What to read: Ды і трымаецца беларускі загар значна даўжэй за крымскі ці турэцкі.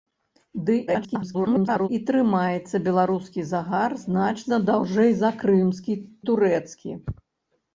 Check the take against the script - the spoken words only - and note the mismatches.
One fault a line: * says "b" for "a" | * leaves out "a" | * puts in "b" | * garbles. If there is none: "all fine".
* garbles
* leaves out "ці"